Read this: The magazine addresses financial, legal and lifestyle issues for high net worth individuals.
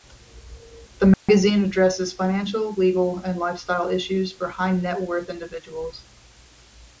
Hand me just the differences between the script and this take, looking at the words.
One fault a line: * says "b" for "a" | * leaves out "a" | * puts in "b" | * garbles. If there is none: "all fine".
all fine